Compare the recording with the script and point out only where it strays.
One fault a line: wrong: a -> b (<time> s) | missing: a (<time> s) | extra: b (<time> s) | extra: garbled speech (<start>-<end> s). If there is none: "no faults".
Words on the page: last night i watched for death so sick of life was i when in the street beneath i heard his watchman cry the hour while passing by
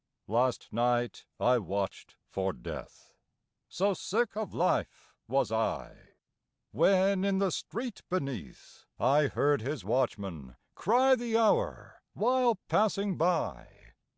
no faults